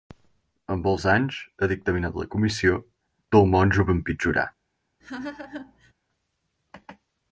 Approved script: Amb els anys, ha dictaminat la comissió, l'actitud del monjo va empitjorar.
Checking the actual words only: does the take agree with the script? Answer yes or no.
no